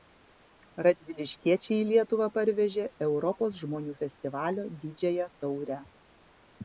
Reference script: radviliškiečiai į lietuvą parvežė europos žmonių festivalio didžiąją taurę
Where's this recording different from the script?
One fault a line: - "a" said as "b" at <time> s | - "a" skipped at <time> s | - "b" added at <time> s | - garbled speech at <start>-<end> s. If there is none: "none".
none